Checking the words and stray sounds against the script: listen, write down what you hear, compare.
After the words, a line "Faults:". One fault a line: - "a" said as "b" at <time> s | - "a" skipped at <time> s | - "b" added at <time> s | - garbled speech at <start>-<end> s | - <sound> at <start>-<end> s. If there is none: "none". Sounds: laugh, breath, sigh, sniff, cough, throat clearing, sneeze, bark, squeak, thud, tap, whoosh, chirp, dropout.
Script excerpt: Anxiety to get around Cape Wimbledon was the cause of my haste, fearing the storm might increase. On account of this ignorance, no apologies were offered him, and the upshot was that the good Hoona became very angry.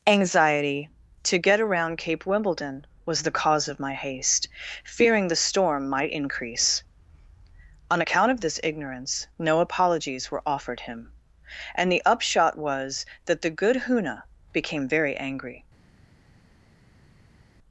Anxiety to get around Cape Wimbledon was the cause of my haste, fearing the storm might increase. On account of this ignorance, no apologies were offered him, and the upshot was that the good Hoona became very angry.
Faults:
none